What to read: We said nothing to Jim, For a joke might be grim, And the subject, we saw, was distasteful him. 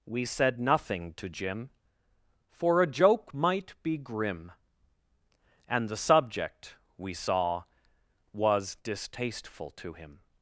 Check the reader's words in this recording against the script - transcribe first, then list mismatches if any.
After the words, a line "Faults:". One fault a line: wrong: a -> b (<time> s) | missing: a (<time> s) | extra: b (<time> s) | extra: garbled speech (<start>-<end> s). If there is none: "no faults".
We said nothing to Jim, For a joke might be grim, And the subject, we saw, was distasteful to him.
Faults:
extra: to (9.7 s)